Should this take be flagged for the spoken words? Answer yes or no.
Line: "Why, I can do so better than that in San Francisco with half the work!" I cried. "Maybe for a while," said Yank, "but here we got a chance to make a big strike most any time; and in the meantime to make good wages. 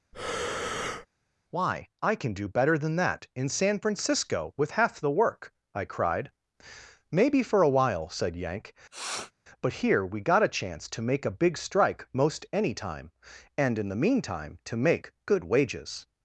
yes